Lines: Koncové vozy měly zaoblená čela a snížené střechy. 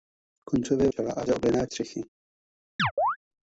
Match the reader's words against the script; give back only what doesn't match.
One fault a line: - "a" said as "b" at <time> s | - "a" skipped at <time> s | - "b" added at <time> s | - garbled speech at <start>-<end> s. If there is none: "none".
- "vozy měly zaoblená" skipped at 0.9 s
- "snížené" said as "zaoblená" at 1.3 s